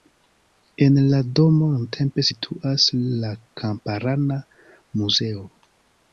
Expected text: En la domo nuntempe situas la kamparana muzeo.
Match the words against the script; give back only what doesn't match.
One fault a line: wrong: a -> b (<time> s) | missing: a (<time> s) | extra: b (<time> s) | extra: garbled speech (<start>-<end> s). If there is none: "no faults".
no faults